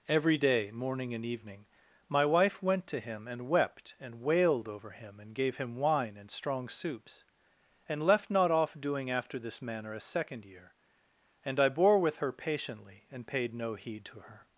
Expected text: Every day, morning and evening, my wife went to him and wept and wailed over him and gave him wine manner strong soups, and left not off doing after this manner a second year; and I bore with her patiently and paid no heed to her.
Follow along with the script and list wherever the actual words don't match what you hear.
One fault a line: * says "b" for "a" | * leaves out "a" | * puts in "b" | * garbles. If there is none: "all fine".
* says "and" for "manner"